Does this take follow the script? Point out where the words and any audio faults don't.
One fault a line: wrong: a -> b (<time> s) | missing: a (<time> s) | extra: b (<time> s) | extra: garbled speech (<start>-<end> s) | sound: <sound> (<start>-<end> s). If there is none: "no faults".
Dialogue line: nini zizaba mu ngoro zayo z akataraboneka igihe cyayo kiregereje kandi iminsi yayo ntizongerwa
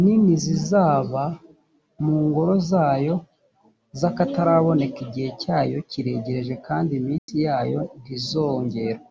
sound: dropout (7.2-7.3 s)